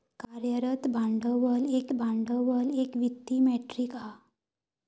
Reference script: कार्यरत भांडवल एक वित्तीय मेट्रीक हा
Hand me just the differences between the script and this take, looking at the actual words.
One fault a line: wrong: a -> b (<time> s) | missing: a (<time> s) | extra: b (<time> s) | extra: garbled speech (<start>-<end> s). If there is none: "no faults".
extra: भांडवल एक (1.9 s)